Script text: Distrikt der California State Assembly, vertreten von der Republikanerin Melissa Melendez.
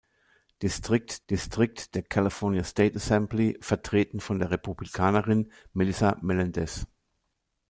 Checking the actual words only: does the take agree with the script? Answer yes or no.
no